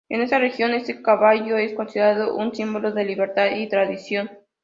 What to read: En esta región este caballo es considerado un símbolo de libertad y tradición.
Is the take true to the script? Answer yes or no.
yes